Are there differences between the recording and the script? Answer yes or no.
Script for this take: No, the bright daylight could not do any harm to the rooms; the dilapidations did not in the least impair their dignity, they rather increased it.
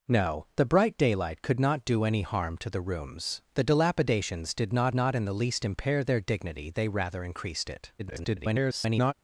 yes